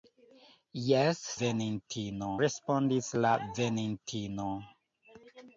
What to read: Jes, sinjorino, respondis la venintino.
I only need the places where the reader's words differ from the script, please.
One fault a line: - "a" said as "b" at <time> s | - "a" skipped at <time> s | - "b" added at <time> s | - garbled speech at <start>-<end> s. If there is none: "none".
- "sinjorino" said as "venintino" at 1.4 s